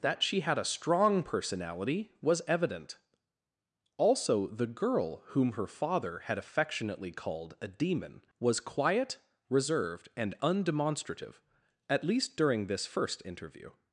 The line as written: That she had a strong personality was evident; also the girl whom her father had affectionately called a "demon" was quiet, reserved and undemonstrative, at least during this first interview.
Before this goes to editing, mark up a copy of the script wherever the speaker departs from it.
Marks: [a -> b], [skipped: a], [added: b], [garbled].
That she had a strong personality was evident; also the girl whom her father had affectionately called a "demon" was quiet, reserved and undemonstrative, at least during this first interview.